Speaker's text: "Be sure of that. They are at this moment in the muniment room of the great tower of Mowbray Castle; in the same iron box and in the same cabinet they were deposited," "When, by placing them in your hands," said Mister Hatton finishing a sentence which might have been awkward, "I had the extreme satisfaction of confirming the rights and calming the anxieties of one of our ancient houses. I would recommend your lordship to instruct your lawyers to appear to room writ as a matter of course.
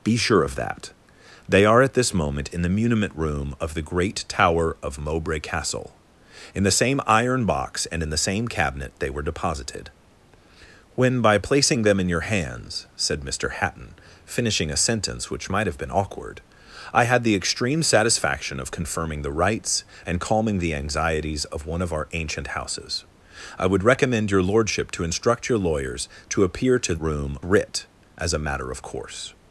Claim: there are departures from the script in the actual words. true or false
false